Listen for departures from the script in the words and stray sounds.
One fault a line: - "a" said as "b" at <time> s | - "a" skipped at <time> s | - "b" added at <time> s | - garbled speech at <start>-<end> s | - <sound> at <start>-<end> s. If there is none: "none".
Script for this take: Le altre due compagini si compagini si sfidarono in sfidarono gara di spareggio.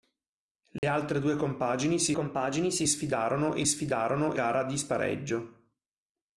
- dropout at 0.8-0.8 s